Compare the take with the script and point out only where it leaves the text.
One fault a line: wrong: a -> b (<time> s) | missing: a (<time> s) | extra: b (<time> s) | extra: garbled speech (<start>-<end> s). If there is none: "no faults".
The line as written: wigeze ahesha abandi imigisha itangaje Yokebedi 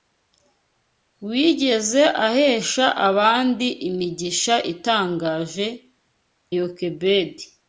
no faults